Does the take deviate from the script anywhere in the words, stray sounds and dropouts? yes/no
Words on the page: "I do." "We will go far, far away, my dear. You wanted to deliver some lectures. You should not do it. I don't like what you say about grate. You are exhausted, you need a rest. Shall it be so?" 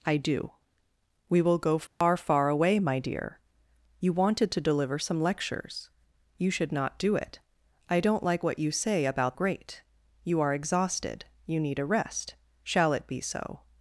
yes